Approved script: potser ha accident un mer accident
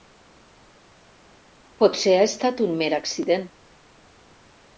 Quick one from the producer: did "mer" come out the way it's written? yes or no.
yes